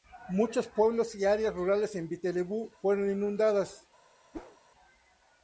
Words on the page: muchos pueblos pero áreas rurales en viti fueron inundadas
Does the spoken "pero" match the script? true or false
false